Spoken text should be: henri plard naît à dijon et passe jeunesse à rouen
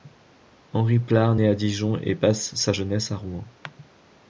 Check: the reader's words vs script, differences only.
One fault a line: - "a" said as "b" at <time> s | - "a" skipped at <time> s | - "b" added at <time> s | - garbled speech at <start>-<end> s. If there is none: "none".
- "sa" added at 2.6 s